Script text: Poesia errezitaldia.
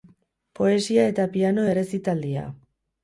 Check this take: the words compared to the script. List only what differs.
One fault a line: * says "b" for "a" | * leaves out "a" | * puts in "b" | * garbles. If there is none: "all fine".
* puts in "eta piano"